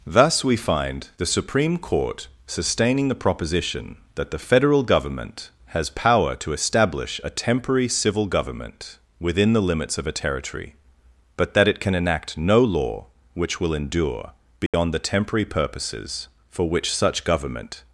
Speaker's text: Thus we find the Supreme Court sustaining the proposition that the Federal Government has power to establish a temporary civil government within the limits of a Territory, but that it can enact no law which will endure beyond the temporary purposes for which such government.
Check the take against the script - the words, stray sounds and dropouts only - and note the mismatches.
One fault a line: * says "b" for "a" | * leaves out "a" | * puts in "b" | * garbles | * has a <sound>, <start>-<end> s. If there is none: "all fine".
* has a dropout, 14.7-14.7 s